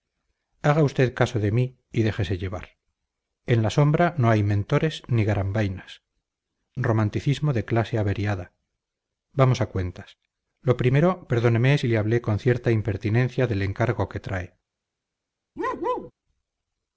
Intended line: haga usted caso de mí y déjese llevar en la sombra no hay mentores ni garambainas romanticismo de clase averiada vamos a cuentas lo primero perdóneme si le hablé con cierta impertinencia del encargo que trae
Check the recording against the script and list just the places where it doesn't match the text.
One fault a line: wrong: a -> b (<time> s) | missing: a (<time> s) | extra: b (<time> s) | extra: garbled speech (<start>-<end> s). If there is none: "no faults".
no faults